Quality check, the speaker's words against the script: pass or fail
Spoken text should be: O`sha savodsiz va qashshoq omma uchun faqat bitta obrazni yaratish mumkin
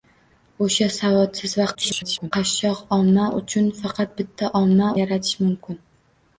fail